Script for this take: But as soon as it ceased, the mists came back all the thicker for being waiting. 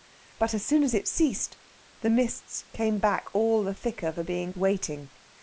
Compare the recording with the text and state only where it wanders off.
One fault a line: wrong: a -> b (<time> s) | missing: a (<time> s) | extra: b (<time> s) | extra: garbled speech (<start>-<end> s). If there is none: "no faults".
no faults